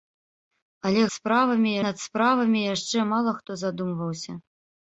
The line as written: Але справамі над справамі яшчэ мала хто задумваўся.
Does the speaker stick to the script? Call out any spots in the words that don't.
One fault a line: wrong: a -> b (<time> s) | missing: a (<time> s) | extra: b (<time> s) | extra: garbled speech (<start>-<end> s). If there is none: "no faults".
no faults